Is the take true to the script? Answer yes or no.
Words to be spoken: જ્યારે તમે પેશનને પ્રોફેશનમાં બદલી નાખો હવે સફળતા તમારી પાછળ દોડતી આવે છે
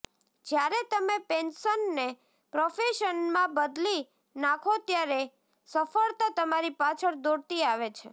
no